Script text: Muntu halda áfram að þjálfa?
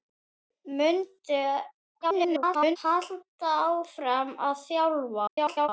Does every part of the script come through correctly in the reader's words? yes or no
no